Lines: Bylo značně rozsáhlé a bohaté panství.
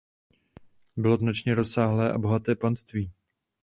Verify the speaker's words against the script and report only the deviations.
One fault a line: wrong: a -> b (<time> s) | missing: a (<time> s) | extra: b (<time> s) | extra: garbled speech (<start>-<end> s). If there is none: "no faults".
no faults